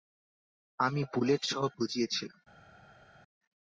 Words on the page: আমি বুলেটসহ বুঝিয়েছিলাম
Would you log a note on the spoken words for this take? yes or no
no